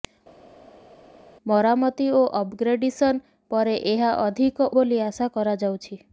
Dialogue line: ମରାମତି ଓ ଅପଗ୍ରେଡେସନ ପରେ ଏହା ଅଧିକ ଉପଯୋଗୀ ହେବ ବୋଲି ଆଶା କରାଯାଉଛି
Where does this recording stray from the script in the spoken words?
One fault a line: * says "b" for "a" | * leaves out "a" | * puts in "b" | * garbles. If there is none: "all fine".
* leaves out "ଉପଯୋଗୀ ହେବ"